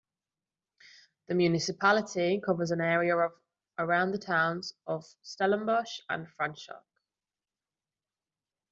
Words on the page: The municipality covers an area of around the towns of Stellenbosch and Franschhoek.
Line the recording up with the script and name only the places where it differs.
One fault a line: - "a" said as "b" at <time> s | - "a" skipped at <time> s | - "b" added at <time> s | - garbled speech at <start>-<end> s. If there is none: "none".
none